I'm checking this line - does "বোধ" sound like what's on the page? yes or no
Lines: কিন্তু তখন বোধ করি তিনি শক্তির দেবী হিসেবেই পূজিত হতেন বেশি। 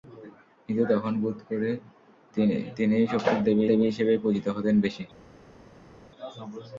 yes